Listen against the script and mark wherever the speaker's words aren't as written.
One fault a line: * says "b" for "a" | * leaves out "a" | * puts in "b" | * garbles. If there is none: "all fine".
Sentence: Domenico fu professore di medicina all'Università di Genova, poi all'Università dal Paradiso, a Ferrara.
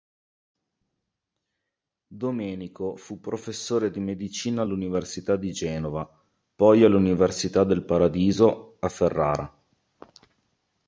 * says "del" for "dal"